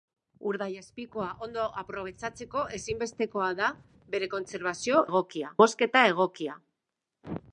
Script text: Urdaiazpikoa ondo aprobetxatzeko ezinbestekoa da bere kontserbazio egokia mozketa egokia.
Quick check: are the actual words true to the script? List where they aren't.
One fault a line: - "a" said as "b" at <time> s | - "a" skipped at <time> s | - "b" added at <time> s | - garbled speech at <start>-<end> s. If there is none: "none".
none